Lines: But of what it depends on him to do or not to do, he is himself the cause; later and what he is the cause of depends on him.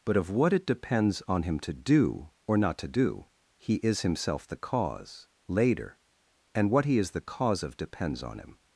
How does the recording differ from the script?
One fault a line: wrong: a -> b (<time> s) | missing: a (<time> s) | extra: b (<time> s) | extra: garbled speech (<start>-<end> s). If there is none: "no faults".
no faults